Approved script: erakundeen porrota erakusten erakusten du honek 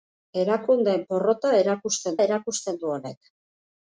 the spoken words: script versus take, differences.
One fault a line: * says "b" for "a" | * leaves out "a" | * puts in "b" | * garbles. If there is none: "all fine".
all fine